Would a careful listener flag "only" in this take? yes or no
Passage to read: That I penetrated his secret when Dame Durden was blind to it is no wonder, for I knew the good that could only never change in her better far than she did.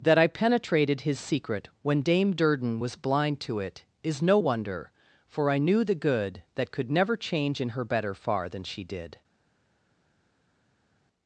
yes